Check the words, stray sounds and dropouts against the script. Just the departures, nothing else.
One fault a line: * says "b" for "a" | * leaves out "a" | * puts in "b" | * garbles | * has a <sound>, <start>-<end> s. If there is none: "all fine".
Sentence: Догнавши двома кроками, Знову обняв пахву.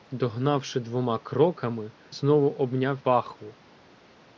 all fine